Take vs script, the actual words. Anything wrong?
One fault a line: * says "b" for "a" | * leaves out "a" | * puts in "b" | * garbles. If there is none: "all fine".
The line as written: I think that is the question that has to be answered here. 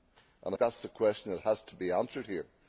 * leaves out "think"